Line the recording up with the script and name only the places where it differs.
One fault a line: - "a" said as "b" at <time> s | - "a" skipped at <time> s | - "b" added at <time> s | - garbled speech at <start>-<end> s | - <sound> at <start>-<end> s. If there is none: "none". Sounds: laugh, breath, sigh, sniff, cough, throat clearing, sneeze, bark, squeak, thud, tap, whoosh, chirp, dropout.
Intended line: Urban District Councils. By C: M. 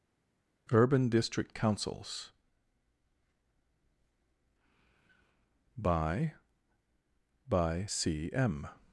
- "By" added at 7.5 s